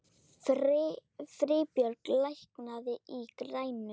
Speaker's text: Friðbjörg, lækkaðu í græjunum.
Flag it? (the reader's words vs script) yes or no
no